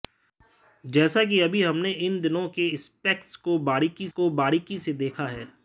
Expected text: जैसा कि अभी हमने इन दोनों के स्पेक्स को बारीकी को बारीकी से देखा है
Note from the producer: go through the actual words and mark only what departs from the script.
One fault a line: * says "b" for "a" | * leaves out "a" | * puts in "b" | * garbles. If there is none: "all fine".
all fine